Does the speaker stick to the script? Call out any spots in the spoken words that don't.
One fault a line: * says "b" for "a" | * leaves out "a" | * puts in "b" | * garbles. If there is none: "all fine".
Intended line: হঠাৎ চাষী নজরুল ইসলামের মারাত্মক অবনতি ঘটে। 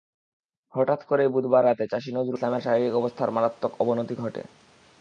* puts in "করেই বুধবার রাতে"
* puts in "শারীরিক অবস্থার"